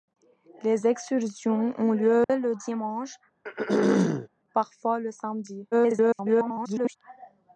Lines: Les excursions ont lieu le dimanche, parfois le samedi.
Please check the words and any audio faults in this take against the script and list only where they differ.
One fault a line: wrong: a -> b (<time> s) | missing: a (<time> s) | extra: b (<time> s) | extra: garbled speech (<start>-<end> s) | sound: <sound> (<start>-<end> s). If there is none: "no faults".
sound: dropout (2.2-2.3 s)
sound: throat clearing (3.4-4.3 s)
extra: garbled speech (5.7-7.0 s)